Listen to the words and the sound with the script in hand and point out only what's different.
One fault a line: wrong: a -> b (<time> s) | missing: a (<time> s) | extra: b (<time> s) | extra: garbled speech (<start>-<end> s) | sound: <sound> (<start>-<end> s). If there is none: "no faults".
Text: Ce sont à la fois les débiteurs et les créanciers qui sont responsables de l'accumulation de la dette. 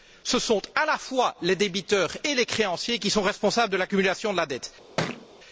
sound: thud (5.0-5.3 s)